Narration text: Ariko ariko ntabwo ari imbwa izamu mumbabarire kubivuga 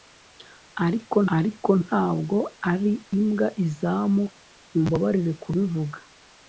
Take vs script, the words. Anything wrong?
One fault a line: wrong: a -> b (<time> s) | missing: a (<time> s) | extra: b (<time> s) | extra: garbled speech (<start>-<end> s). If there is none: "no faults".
no faults